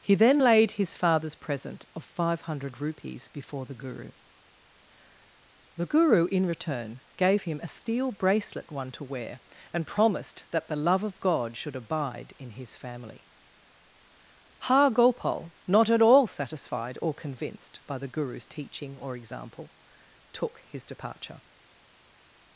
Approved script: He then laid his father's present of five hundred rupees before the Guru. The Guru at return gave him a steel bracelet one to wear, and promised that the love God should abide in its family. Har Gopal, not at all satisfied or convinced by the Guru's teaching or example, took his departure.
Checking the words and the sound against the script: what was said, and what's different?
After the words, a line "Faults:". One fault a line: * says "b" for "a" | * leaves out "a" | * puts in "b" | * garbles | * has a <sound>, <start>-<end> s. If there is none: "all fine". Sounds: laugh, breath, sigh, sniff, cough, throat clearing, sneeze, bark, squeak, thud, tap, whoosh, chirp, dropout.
He then laid his father's present of five hundred rupees before the Guru. The Guru in return gave him a steel bracelet one to wear, and promised that the love of God should abide in his family. Har Gopal, not at all satisfied or convinced by the Guru's teaching or example, took his departure.
Faults:
* says "in" for "at"
* puts in "of"
* says "his" for "its"